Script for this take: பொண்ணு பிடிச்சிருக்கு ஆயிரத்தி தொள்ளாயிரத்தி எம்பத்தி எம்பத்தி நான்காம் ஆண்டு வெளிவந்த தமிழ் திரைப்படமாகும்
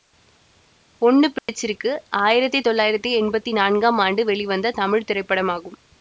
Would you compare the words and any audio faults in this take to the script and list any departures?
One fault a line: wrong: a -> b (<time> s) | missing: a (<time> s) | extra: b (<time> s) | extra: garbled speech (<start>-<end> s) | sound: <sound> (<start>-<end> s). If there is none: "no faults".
sound: dropout (1.4-1.5 s)
missing: எம்பத்தி (3.5 s)